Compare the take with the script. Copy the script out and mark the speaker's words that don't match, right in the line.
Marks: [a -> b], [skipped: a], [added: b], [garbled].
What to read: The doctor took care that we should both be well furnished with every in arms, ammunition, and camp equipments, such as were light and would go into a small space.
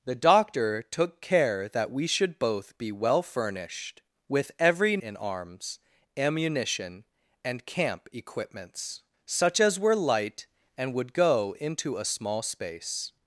The doctor took care that we should both be well furnished with every in arms, ammunition, and camp equipments, such as were light and would go into a small space.